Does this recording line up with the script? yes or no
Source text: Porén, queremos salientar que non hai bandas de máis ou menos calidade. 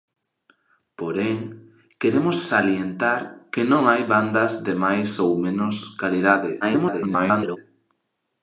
no